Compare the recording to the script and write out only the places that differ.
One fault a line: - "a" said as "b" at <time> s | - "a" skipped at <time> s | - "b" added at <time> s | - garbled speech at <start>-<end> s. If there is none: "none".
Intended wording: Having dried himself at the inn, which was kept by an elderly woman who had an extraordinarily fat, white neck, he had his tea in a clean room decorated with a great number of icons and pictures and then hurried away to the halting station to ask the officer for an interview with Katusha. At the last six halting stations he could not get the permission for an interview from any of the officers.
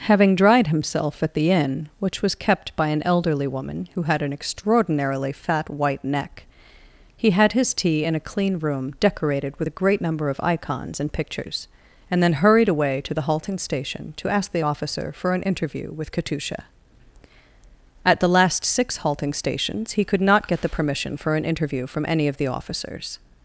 none